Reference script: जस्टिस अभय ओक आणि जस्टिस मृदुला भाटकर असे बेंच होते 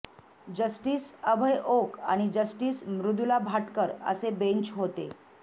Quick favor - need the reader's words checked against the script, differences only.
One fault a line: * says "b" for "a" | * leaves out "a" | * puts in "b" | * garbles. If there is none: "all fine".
all fine